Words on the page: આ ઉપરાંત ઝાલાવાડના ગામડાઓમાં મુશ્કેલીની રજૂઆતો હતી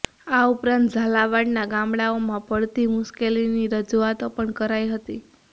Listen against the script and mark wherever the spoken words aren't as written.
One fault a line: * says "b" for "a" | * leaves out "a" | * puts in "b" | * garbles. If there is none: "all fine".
* puts in "પડતી"
* puts in "પણ કરાઈ"